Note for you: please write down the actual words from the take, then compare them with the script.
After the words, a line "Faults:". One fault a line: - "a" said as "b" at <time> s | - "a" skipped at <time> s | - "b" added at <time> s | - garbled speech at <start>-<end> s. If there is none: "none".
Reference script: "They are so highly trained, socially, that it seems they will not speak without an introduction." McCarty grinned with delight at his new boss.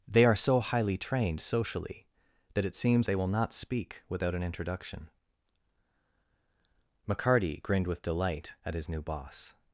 "They are so highly trained, socially, that it seems they will not speak without an introduction." McCarty grinned with delight at his new boss.
Faults:
none